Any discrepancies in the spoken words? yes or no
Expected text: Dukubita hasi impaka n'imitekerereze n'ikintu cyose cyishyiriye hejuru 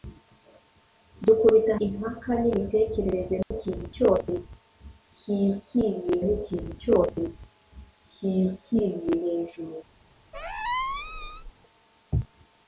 yes